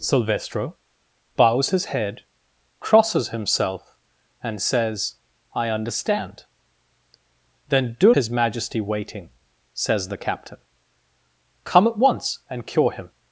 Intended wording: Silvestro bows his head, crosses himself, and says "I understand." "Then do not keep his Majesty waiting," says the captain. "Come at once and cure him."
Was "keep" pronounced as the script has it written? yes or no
no